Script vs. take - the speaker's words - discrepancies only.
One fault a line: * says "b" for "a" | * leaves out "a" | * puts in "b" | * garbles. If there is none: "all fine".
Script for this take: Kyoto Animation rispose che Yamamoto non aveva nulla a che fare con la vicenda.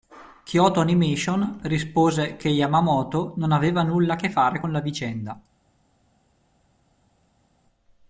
all fine